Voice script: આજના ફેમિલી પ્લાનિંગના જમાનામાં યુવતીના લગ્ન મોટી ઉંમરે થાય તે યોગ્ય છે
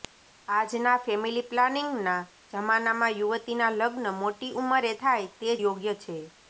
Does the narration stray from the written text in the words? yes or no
no